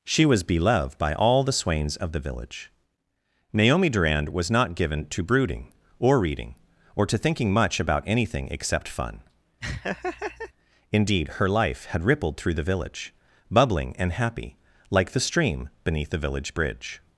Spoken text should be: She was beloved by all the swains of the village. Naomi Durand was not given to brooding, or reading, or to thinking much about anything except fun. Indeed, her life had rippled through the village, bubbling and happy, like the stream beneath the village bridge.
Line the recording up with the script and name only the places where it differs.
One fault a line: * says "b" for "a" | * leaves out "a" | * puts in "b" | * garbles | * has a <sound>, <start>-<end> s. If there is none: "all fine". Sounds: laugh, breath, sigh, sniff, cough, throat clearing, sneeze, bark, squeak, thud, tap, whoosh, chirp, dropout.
* has a laugh, 9.6-10.5 s